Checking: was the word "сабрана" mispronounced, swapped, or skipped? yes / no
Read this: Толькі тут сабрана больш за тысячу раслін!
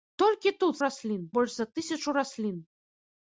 yes